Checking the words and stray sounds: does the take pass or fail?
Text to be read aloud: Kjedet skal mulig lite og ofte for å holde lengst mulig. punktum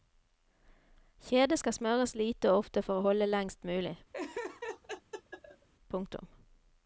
fail